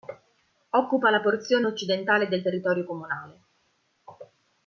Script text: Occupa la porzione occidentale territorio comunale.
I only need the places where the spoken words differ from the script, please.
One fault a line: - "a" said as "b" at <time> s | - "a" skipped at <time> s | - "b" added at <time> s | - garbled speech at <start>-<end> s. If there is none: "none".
- "del" added at 2.3 s